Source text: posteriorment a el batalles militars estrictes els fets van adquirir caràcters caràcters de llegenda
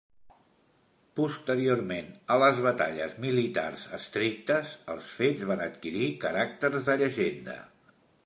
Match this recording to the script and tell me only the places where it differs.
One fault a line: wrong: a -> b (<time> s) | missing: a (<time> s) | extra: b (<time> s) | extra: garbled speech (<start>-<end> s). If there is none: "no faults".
wrong: el -> les (2.4 s)
missing: caràcters (6.9 s)